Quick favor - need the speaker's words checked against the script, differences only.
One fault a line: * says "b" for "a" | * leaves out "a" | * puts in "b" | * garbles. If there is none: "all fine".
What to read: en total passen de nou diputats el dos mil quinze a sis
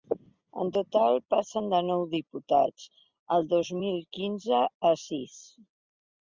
all fine